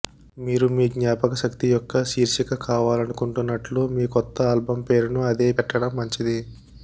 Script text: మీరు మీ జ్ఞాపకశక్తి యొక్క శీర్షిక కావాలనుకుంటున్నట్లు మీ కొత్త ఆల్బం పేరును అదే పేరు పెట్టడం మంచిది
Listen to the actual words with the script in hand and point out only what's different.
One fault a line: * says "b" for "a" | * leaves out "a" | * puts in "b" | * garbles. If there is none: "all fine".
* leaves out "పేరు"